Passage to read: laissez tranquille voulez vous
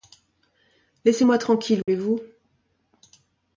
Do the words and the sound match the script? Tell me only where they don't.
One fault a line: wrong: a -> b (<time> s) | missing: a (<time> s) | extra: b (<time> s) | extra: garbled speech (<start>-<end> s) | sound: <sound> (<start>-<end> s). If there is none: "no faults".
extra: moi (1.2 s)
sound: dropout (1.8-1.9 s)